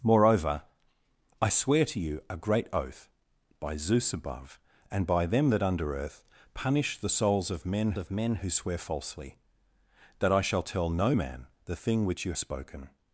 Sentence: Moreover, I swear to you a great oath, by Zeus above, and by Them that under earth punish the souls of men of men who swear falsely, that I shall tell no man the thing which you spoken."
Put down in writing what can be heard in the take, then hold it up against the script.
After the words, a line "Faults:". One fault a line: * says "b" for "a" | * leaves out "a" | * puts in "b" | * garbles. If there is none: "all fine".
Moreover, I swear to you a great oath, by Zeus above, and by Them that under earth punish the souls of men of men who swear falsely, that I shall tell no man the thing which you spoken."
Faults:
all fine